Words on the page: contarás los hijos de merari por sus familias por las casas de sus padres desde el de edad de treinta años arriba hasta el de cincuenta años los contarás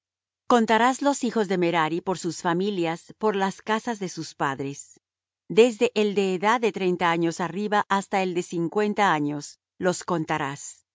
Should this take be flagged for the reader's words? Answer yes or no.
no